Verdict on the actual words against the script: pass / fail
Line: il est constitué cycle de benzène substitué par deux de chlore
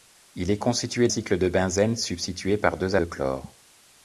pass